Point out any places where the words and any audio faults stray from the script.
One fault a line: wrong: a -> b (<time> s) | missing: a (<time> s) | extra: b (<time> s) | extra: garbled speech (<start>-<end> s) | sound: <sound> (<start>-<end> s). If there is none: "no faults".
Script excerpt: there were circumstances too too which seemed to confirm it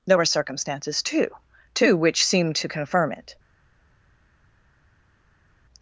no faults